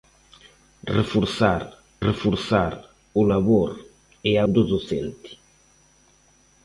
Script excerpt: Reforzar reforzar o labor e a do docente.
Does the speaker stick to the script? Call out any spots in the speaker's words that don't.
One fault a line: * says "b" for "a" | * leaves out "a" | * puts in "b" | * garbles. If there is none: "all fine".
all fine